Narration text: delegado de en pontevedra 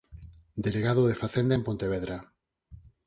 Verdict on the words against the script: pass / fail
fail